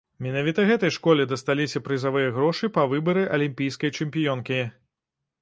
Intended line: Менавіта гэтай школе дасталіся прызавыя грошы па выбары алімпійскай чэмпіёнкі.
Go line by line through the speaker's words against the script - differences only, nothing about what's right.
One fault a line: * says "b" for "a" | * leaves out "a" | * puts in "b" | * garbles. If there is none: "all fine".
all fine